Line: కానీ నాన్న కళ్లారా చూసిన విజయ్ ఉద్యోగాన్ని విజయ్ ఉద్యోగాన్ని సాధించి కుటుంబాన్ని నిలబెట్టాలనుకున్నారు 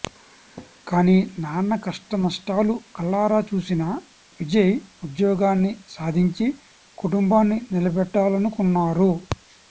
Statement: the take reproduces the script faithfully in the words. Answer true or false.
false